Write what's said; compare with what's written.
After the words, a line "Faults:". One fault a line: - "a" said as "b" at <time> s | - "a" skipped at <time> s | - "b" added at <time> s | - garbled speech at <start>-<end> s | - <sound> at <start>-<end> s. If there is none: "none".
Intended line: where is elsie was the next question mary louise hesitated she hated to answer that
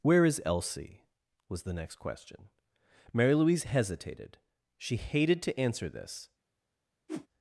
where is elsie was the next question mary louise hesitated she hated to answer this
Faults:
- "that" said as "this" at 5.9 s
- whoosh at 7.1-7.3 s